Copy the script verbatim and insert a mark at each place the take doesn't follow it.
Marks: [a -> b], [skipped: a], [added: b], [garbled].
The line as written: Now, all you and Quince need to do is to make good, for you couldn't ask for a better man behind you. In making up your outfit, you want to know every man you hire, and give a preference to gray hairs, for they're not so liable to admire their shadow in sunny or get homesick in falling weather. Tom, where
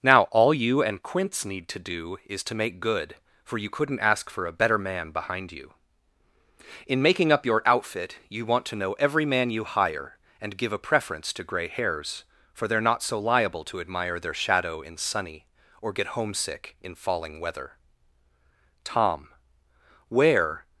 Now, all you and Quince need to do is to make good, for you couldn't ask for a better man behind you. In making up your outfit, you want to know every man you hire, and give a preference to gray hairs, for they're not so liable to admire their shadow in sunny or get homesick in falling weather. Tom, where